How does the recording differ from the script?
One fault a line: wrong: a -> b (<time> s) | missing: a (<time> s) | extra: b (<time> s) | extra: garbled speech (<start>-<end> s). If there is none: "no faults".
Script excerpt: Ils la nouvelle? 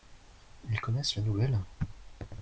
extra: connaissent (0.8 s)